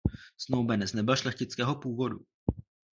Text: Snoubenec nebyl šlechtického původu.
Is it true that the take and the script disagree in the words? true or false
false